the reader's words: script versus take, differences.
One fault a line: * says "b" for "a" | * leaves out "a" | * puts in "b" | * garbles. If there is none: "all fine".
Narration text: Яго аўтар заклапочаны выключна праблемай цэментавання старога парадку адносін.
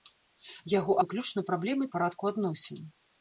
* leaves out "аўтар заклапочаны"
* leaves out "цэментавання старога"